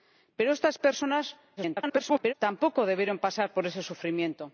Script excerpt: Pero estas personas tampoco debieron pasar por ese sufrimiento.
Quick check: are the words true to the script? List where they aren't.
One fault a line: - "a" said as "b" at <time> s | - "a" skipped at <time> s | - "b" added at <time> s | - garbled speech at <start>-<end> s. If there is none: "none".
- garbled speech at 1.6-2.3 s